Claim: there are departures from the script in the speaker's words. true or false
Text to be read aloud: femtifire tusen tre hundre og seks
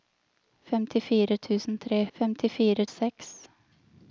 true